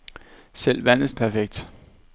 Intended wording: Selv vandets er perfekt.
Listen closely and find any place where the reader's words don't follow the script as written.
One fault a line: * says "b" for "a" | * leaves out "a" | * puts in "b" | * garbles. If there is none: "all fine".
all fine